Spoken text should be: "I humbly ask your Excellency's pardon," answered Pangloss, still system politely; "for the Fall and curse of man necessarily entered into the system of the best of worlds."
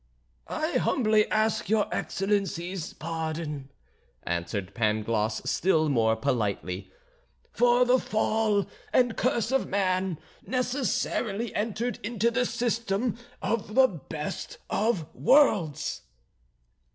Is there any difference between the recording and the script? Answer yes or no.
yes